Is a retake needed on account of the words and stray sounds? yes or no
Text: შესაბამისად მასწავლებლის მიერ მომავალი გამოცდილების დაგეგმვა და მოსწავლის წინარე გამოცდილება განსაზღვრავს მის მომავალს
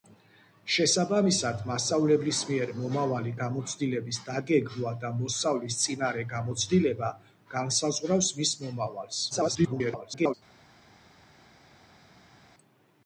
yes